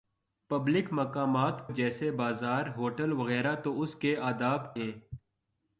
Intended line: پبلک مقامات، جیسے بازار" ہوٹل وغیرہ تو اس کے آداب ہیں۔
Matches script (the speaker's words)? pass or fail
pass